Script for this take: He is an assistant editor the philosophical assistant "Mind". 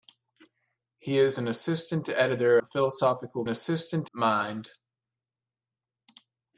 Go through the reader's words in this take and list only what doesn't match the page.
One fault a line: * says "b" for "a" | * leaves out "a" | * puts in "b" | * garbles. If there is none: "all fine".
all fine